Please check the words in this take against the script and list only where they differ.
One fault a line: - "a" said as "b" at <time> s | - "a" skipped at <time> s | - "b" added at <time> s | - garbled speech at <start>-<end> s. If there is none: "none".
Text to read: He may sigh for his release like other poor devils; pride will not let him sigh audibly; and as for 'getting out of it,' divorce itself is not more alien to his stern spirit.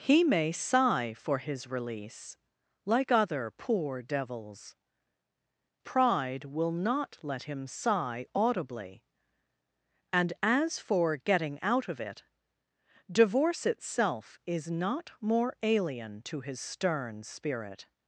none